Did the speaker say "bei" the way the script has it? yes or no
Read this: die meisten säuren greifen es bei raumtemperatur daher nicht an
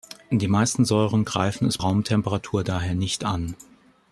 no